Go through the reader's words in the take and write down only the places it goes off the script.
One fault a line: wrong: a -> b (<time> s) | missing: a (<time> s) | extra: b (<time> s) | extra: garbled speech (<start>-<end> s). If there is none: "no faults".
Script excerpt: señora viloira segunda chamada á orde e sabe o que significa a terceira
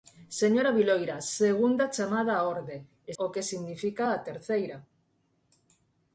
missing: sabe (3.1 s)